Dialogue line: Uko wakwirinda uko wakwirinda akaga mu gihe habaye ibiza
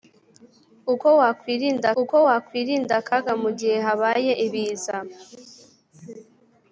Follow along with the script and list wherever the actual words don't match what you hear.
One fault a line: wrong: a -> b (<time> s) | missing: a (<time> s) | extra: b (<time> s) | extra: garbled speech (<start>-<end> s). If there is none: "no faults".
no faults